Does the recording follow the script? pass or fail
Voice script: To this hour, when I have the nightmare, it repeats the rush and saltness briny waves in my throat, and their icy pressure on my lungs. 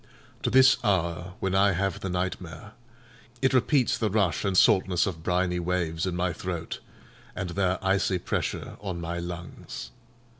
fail